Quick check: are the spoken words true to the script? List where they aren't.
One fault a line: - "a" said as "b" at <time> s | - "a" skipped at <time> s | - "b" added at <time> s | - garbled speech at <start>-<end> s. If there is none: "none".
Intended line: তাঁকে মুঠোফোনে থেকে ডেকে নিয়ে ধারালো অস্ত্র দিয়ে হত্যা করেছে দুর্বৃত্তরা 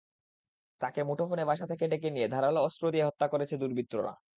- "বাসা" added at 1.4 s